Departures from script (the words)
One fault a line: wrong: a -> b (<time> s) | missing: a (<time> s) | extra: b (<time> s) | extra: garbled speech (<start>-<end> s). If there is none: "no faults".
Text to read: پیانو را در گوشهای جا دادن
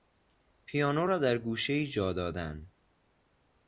no faults